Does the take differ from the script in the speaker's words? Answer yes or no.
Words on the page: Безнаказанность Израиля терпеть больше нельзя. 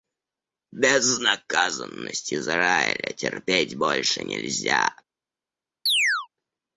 no